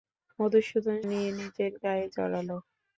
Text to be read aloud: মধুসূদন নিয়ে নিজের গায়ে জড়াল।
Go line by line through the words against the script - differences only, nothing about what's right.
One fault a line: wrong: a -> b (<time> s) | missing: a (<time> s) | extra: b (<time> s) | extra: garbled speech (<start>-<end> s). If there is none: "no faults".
no faults